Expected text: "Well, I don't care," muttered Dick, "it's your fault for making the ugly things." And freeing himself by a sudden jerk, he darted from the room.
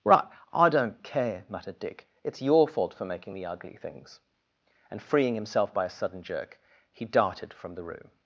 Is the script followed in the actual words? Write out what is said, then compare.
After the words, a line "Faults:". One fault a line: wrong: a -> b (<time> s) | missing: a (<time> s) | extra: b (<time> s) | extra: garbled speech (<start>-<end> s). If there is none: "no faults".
"Right, I don't care," muttered Dick, "it's your fault for making the ugly things." And freeing himself by a sudden jerk, he darted from the room.
Faults:
wrong: Well -> Right (0.0 s)